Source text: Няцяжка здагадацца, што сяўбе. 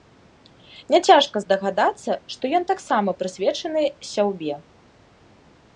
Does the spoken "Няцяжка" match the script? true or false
true